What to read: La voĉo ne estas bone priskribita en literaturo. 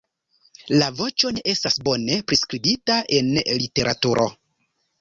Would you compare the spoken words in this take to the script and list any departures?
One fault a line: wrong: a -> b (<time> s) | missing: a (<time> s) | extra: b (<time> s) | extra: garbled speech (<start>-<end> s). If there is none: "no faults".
no faults